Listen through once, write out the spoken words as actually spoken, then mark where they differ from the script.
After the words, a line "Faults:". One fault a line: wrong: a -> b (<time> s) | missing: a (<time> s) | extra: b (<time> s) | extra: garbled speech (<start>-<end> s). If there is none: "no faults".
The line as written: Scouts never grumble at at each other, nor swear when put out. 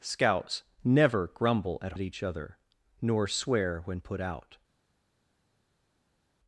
Scouts never grumble at at each other, nor swear when put out.
Faults:
no faults